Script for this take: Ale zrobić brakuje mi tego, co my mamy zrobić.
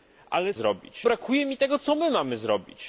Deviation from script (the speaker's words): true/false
false